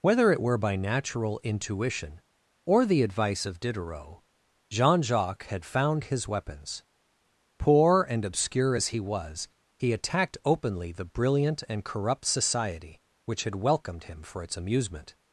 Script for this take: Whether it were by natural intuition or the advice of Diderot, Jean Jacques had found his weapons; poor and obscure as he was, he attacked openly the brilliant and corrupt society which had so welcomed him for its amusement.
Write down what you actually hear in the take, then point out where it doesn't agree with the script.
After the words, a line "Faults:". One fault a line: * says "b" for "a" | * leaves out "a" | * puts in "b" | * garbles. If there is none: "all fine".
Whether it were by natural intuition or the advice of Diderot, Jean Jacques had found his weapons; poor and obscure as he was, he attacked openly the brilliant and corrupt society which had welcomed him for its amusement.
Faults:
* leaves out "so"